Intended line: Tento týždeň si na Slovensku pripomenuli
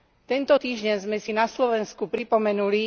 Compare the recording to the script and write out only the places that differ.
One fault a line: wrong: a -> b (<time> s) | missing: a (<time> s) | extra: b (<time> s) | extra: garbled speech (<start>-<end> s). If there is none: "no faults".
extra: sme (1.1 s)